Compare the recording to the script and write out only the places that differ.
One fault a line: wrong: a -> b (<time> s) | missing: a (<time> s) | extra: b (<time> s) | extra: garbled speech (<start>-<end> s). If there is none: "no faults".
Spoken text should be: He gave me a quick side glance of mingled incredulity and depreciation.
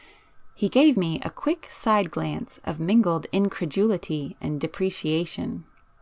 no faults